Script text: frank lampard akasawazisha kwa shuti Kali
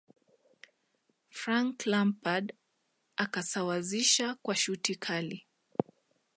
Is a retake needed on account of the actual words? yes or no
no